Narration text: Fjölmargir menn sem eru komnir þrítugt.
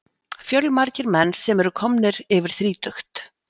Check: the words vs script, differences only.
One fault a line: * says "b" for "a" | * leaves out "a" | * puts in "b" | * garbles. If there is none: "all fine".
* puts in "yfir"